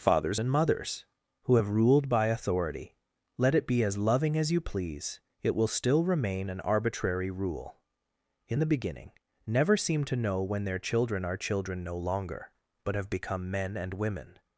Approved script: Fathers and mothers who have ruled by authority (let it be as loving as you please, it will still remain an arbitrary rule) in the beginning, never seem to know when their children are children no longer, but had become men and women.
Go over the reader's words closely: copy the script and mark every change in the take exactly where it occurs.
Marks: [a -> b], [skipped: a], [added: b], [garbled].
Fathers and mothers who have ruled by authority (let it be as loving as you please, it will still remain an arbitrary rule) in the beginning, never seem to know when their children are children no longer, but [had -> have] become men and women.